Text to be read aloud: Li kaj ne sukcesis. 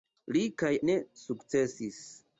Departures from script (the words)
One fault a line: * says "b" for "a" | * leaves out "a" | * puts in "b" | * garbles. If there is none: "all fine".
all fine